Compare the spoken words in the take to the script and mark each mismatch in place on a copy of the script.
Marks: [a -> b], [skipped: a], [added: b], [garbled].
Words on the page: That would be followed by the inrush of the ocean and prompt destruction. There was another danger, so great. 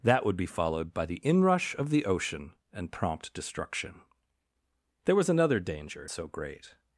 That would be followed by the inrush of the ocean and prompt destruction. There was another danger, so great.